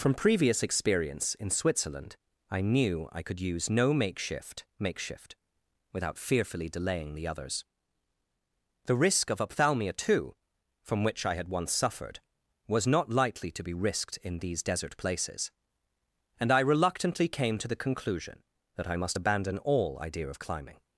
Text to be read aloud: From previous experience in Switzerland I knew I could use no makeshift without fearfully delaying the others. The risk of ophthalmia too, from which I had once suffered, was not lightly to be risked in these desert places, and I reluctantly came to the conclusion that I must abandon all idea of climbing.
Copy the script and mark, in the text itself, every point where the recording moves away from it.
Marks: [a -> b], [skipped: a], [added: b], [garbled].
From previous experience in Switzerland I knew I could use no makeshift [added: makeshift] without fearfully delaying the others. The risk of ophthalmia too, from which I had once suffered, was not lightly to be risked in these desert places, and I reluctantly came to the conclusion that I must abandon all idea of climbing.